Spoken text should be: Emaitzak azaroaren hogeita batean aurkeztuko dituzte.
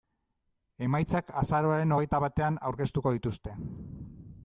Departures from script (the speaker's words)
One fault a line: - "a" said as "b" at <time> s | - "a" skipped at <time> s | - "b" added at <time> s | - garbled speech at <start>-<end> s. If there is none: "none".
none